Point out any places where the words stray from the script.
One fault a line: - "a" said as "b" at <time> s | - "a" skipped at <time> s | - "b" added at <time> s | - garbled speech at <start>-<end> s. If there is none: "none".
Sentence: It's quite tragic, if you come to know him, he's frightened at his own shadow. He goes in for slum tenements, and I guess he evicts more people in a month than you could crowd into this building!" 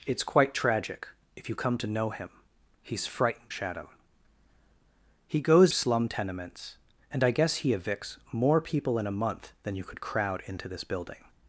- "at his own" skipped at 3.5 s
- "in for" skipped at 5.7 s